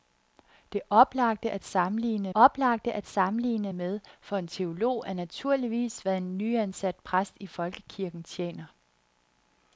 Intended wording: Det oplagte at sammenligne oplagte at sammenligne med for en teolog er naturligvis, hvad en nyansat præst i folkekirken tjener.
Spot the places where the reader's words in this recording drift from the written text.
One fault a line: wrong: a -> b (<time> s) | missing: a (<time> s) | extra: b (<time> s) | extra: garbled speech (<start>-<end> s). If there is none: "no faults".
no faults